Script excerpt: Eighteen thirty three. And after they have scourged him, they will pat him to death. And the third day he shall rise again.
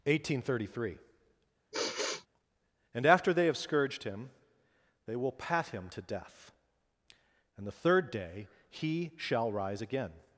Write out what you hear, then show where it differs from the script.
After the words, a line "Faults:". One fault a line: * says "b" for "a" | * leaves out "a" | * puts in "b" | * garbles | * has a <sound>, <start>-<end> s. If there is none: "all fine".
Eighteen thirty three. And after they have scourged him, they will pat him to death. And the third day he shall rise again.
Faults:
* has a sigh, 1.7-2.3 s